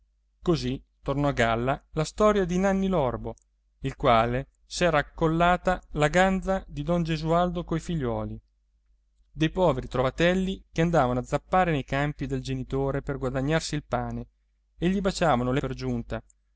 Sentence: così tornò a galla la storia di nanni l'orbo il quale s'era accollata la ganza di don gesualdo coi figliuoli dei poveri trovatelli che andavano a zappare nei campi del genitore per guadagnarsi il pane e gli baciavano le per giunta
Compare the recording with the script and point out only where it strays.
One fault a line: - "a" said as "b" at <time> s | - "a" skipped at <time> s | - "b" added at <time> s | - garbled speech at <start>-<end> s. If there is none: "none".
none